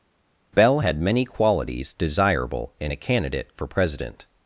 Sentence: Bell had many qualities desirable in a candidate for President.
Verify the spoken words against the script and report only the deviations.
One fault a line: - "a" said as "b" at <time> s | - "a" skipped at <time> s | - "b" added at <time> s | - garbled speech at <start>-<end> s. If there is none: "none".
none